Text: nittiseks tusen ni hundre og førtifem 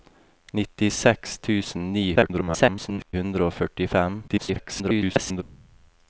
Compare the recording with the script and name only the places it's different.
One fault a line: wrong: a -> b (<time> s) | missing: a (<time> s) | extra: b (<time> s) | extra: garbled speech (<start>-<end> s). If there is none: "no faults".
extra: garbled speech (2.2-3.1 s)
extra: garbled speech (4.3-5.4 s)